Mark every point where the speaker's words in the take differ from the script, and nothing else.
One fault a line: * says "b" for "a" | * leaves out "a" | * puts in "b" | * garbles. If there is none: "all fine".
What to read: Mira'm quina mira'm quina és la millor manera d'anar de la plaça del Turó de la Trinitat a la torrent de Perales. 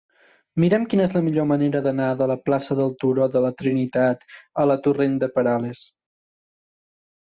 * leaves out "mira'm quina"